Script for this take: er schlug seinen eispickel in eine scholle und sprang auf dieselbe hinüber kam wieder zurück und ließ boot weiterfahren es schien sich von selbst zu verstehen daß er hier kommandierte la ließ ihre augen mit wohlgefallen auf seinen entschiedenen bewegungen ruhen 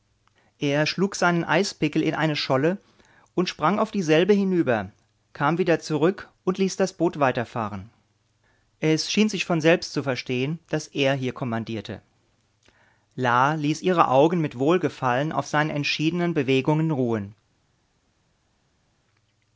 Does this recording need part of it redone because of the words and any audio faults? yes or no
yes